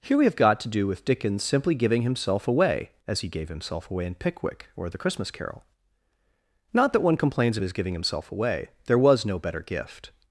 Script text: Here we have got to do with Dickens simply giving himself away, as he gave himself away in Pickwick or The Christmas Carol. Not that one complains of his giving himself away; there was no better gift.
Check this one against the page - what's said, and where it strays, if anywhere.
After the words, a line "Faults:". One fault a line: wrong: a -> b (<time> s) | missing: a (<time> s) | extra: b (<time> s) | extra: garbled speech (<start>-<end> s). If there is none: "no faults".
Here we have got to do with Dickens simply giving himself away, as he gave himself away in Pickwick or The Christmas Carol. Not that one complains of his giving himself away; there was no better gift.
Faults:
no faults